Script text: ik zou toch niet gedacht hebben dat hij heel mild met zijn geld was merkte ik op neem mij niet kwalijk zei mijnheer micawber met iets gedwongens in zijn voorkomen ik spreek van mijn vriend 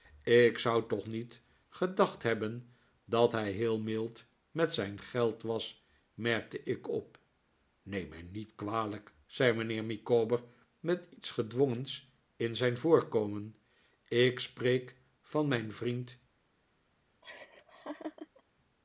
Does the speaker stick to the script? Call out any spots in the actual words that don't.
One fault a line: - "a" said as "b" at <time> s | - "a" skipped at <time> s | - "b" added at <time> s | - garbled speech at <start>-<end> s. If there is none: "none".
none